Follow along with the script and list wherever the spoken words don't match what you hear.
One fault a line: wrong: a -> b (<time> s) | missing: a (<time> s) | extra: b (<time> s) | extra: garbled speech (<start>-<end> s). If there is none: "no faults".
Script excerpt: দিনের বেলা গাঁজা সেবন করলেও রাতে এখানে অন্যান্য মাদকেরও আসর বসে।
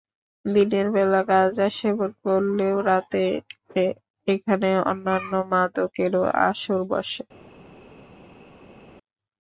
no faults